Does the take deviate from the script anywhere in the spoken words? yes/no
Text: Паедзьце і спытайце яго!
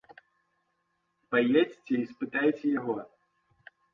no